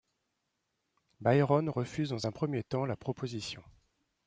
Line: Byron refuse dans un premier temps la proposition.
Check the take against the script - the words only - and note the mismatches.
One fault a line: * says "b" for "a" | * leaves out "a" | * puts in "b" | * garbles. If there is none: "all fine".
all fine